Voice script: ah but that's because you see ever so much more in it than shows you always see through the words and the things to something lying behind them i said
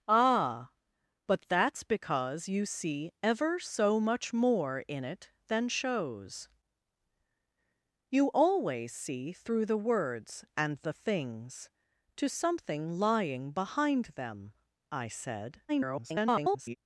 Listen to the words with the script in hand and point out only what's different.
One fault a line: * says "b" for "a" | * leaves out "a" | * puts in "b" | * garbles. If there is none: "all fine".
* garbles